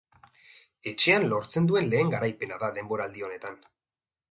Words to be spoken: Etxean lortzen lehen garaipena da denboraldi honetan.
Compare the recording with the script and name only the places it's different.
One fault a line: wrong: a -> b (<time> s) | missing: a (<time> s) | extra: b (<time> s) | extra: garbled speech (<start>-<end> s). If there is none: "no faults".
extra: duen (1.7 s)